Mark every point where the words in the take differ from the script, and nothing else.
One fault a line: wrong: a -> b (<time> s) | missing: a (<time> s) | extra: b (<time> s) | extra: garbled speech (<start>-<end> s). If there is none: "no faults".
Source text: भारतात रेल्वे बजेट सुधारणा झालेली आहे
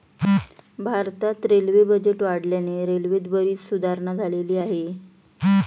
extra: वाढल्याने रेल्वेत बरीच (2.2 s)